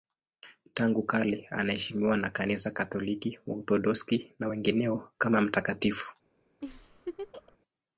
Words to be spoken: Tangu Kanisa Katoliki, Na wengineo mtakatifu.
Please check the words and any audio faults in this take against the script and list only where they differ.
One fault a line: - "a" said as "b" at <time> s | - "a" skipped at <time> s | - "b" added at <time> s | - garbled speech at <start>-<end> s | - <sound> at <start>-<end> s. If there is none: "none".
- "kale anaheshimiwa na" added at 1.0 s
- "Waorthodoksi" added at 3.5 s
- "kama" added at 5.2 s
- laugh at 6.6-7.6 s